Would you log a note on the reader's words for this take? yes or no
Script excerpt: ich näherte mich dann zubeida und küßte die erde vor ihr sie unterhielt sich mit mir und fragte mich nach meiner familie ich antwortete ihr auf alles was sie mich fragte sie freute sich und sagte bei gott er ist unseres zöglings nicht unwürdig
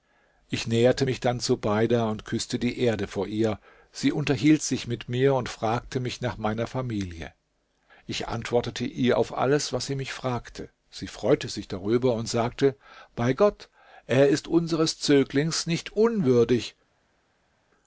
yes